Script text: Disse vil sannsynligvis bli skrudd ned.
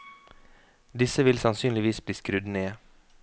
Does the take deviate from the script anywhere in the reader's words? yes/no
no